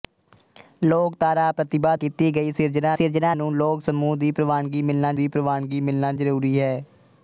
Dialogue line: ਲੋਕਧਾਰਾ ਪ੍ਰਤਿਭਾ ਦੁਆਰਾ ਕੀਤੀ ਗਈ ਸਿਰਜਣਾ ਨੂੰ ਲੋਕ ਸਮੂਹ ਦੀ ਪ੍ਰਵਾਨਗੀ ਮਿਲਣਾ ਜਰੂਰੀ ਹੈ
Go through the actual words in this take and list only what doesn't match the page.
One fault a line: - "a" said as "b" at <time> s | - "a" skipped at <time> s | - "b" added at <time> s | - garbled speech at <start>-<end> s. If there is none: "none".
- "ਦੁਆਰਾ" skipped at 1.9 s
- "ਸਿਰਜਣਾ" added at 2.9 s
- "ਦੀ ਪ੍ਰਵਾਨਗੀ ਮਿਲਣਾ" added at 5.1 s